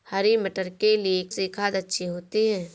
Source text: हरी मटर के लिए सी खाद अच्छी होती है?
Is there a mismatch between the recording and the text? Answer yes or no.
no